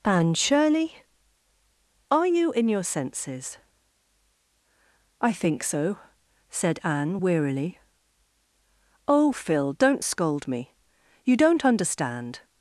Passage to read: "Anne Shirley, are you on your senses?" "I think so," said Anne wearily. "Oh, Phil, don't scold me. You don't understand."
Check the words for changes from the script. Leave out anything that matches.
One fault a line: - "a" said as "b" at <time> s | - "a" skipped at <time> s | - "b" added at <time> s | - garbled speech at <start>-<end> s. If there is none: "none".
- "on" said as "in" at 2.5 s